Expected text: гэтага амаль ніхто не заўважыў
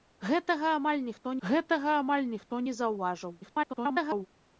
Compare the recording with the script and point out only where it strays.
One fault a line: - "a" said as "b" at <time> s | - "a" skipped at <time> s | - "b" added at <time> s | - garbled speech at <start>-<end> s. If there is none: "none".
- "гэтага амаль ніхто" added at 1.5 s
- garbled speech at 3.4-4.3 s